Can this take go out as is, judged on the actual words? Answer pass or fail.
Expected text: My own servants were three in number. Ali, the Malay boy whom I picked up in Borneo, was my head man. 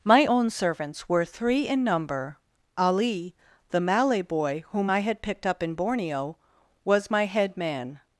fail